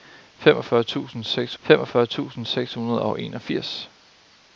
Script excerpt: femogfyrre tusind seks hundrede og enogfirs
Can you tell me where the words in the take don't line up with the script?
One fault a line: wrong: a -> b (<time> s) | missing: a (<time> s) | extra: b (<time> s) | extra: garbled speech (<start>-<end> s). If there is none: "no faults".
extra: femogfyrre tusind seks (1.6 s)